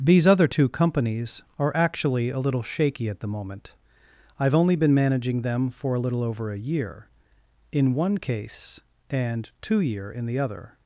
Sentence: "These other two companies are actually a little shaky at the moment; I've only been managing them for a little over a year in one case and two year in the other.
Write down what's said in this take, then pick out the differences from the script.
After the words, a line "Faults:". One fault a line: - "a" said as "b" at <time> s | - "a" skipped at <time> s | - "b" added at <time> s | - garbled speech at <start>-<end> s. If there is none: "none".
"These other two companies are actually a little shaky at the moment; I've only been managing them for a little over a year in one case and two year in the other.
Faults:
none